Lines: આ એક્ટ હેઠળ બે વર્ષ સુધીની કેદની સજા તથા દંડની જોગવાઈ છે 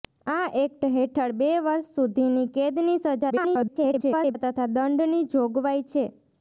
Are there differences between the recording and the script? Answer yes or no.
yes